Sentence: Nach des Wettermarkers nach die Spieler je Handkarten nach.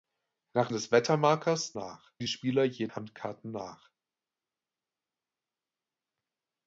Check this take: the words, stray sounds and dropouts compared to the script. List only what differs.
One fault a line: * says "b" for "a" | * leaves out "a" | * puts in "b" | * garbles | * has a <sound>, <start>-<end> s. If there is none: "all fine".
all fine